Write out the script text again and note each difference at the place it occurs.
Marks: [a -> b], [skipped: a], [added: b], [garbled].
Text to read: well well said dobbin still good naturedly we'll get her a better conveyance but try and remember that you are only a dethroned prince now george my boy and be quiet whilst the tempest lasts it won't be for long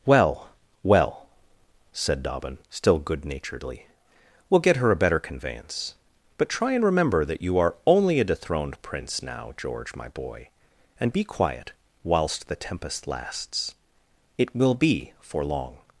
well well said dobbin still good naturedly we'll get her a better conveyance but try and remember that you are only a dethroned prince now george my boy and be quiet whilst the tempest lasts it [won't -> will] be for long